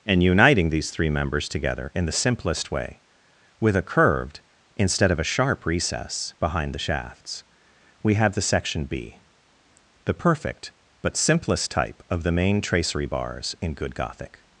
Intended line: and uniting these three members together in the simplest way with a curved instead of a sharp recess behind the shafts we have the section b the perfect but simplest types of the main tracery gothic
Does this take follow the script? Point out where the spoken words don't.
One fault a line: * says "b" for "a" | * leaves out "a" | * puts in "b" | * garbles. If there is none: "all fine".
* says "type" for "types"
* puts in "bars in good"